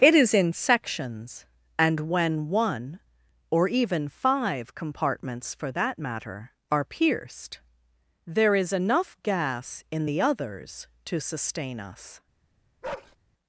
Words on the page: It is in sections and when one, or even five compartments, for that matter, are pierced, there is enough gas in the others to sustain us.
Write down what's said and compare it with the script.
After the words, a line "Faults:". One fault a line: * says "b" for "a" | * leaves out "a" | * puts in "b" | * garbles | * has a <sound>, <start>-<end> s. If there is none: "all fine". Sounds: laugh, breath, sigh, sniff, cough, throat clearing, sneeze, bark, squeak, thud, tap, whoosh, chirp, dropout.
It is in sections and when one, or even five compartments, for that matter, are pierced, there is enough gas in the others to sustain us.
Faults:
* has a bark, 12.8-13.2 s